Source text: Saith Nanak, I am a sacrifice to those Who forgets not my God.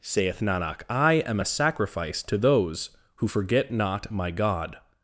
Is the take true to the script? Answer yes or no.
no